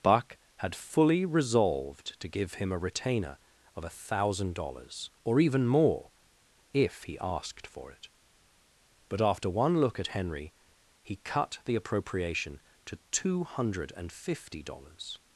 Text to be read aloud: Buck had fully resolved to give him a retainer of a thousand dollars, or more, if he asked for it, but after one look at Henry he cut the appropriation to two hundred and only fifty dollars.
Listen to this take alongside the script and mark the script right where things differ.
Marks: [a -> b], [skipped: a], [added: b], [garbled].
Buck had fully resolved to give him a retainer of a thousand dollars, or [added: even] more, if he asked for it, but after one look at Henry he cut the appropriation to two hundred and [skipped: only] fifty dollars.